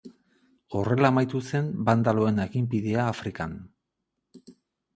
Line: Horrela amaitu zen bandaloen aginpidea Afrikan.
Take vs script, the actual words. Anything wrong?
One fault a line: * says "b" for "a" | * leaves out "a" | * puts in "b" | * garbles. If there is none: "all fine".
all fine